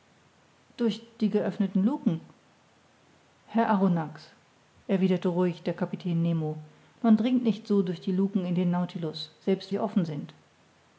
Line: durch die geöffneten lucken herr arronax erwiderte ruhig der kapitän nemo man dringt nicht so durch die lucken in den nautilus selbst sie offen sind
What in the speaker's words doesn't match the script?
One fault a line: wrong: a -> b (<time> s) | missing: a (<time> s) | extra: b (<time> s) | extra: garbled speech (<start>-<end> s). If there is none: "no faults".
no faults